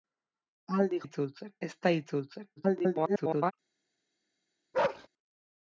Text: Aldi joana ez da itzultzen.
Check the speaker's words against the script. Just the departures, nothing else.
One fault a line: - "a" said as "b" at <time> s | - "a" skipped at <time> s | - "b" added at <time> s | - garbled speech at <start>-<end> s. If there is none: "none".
- "joana" said as "itzultzen" at 1.0 s
- garbled speech at 2.6-3.5 s